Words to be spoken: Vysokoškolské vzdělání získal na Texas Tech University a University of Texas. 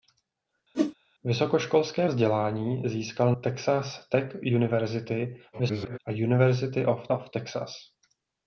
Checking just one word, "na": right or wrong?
wrong